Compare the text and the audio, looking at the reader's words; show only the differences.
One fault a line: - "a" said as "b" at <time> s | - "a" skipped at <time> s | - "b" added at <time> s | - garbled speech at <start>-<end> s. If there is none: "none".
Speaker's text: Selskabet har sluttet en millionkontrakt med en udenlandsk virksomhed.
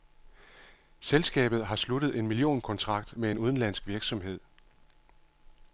none